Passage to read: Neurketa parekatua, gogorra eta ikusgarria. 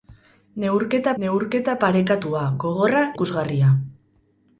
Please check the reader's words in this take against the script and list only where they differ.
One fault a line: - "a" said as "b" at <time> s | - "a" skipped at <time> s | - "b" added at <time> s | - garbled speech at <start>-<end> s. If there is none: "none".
- "neurketa" added at 1.2 s
- "eta" skipped at 3.0 s